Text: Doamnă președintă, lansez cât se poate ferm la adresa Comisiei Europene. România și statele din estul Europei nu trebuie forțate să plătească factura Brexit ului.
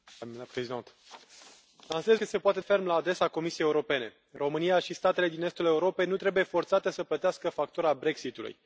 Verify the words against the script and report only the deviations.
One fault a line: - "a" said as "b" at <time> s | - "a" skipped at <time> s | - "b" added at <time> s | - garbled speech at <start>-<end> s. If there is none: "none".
none